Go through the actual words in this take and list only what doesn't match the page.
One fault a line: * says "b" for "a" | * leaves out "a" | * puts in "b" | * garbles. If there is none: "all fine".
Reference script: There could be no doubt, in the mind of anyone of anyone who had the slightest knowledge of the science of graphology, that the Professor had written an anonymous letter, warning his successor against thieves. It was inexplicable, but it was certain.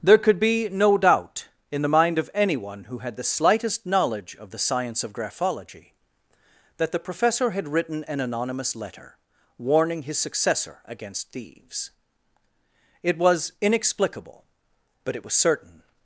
* leaves out "of anyone"